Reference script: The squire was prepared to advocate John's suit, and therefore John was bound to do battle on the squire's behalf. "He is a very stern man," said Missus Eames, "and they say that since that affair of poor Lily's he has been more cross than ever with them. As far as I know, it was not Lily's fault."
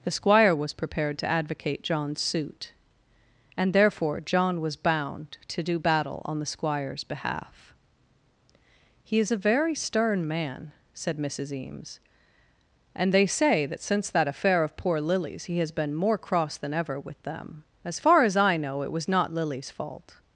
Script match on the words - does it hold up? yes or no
yes